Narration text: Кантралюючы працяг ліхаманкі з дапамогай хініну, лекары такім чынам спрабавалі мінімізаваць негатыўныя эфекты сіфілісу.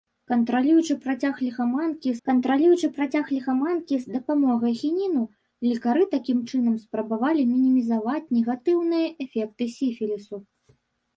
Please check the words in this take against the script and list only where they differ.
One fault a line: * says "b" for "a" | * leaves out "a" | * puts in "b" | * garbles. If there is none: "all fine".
* puts in "кантралюючы працяг ліхаманкі"